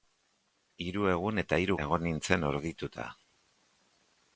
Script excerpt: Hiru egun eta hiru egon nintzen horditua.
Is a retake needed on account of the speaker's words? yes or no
no